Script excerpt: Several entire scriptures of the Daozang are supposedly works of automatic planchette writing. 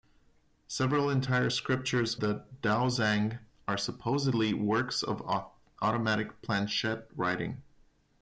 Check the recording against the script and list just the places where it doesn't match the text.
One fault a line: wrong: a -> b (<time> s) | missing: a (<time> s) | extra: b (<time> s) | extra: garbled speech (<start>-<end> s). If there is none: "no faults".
missing: of (2.2 s)